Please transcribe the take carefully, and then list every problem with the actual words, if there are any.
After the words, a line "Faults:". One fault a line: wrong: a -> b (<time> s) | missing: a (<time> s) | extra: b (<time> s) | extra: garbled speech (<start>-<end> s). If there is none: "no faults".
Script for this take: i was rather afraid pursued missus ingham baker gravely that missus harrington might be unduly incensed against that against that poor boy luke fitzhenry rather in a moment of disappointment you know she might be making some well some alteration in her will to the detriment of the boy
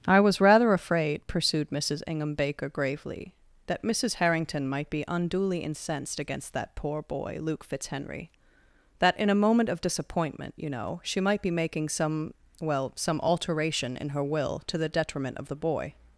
i was rather afraid pursued missus ingham baker gravely that missus harrington might be unduly incensed against that poor boy luke fitzhenry that in a moment of disappointment you know she might be making some well some alteration in her will to the detriment of the boy
Faults:
missing: against that (6.7 s)
wrong: rather -> that (9.0 s)